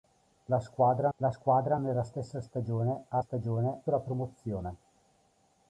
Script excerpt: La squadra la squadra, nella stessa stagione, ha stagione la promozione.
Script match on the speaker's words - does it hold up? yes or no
yes